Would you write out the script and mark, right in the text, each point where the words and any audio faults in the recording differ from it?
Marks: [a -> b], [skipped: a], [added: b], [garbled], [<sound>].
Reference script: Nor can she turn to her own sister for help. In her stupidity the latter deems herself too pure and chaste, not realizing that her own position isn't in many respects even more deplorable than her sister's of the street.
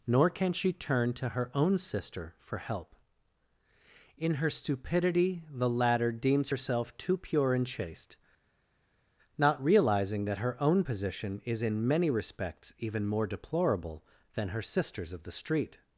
Nor can she turn to her own sister for help. In her stupidity the latter deems herself too pure and chaste, not realizing that her own position [isn't -> is] in many respects even more deplorable than her sister's of the street.